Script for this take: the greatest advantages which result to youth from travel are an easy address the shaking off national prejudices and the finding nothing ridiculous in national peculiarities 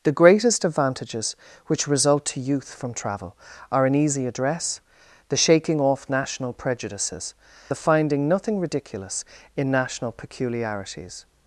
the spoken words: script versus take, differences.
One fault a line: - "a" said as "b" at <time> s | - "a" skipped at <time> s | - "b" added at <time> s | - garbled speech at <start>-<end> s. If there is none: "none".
- "and" skipped at 7.3 s